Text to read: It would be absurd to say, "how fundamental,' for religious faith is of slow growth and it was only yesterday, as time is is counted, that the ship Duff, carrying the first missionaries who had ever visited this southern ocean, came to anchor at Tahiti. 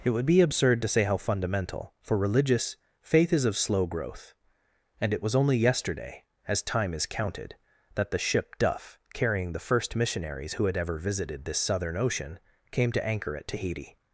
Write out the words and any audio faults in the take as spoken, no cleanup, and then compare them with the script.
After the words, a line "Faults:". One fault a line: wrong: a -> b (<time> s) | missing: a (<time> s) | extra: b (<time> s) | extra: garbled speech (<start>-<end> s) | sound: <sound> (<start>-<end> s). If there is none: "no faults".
It would be absurd to say, "how fundamental,' for religious faith is of slow growth and it was only yesterday, as time is counted, that the ship Duff, carrying the first missionaries who had ever visited this southern ocean, came to anchor at Tahiti.
Faults:
missing: is (7.1 s)